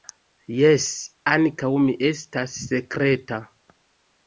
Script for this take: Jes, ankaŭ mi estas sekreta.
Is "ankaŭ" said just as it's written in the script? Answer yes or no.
yes